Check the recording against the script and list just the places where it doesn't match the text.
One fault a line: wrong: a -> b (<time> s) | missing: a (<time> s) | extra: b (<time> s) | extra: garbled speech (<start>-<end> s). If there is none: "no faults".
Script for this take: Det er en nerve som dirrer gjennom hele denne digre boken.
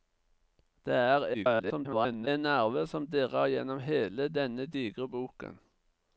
extra: garbled speech (1.3-2.3 s)